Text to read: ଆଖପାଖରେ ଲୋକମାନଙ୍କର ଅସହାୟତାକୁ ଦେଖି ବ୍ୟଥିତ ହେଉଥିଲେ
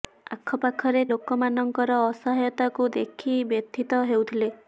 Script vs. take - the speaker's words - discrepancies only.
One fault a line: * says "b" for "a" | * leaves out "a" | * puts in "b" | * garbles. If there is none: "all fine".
all fine